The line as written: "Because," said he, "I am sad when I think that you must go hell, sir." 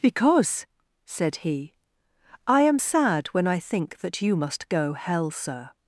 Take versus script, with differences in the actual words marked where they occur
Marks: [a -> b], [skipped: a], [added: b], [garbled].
"Because," said he, "I am sad when I think that you must go hell, sir."